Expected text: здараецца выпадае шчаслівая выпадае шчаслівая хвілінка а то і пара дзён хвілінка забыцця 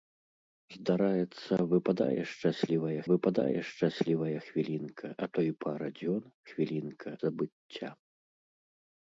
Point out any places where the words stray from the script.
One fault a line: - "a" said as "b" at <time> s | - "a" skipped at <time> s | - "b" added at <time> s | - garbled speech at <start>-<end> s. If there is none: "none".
none